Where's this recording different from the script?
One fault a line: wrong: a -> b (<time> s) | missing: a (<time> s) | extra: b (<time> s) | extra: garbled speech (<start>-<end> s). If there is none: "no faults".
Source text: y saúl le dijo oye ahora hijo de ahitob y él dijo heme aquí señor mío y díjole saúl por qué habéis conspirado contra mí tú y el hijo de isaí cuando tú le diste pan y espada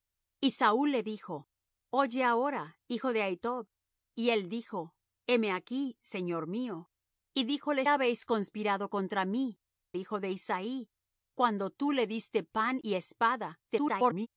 missing: saúl por qué (7.8 s)
missing: tú y el (9.6 s)
extra: garbled speech (13.7-14.3 s)